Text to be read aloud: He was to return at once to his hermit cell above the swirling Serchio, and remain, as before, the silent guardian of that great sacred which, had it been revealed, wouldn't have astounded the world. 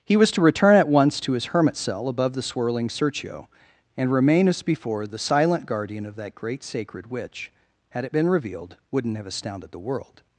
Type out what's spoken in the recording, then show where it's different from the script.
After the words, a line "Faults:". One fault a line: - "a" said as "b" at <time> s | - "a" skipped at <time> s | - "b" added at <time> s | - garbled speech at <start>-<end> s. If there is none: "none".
He was to return at once to his hermit cell above the swirling Serchio, and remain, as before, the silent guardian of that great sacred which, had it been revealed, wouldn't have astounded the world.
Faults:
none